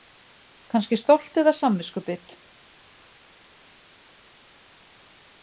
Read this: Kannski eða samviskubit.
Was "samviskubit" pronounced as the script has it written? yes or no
yes